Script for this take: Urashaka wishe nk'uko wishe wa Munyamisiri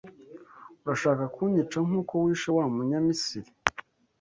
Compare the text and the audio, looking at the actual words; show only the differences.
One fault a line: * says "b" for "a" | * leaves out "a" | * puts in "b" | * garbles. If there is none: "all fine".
* says "kunyica" for "wishe"